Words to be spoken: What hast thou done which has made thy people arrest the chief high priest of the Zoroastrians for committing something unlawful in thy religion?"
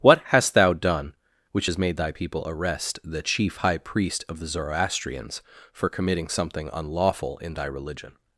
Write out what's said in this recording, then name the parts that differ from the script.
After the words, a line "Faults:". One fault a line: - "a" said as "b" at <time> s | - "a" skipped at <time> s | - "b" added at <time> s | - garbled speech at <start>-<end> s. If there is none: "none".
What hast thou done which has made thy people arrest the chief high priest of the Zoroastrians for committing something unlawful in thy religion?"
Faults:
none